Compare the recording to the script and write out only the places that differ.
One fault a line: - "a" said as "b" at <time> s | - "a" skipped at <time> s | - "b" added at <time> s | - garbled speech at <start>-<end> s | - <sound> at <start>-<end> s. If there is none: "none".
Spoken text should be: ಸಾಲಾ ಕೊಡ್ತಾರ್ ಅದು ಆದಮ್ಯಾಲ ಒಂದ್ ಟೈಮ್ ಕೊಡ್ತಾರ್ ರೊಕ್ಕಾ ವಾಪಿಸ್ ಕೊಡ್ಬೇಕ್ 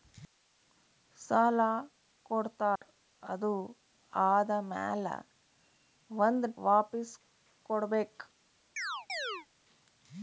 - dropout at 2.8-2.8 s
- "ಟೈಮ್ ಕೊಡ್ತಾರ್ ರೊಕ್ಕಾ" skipped at 6.5 s
- chirp at 8.8-9.5 s